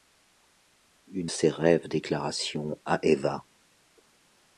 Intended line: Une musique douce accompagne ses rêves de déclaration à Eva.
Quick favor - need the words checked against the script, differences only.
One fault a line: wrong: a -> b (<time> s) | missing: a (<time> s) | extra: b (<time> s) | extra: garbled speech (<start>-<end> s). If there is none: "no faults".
missing: musique douce accompagne (1.3 s)
missing: de (1.9 s)